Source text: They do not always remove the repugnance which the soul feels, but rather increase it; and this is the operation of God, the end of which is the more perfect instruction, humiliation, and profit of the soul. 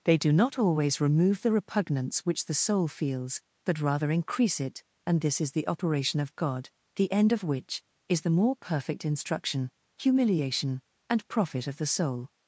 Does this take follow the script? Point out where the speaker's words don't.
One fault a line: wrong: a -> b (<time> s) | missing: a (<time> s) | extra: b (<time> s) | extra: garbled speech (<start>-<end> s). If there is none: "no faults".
no faults